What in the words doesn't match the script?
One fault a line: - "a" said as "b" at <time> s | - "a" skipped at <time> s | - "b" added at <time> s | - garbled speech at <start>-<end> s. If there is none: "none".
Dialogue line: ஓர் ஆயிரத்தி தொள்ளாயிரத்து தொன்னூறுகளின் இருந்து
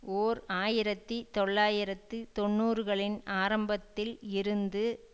- "ஆரம்பத்தில்" added at 3.4 s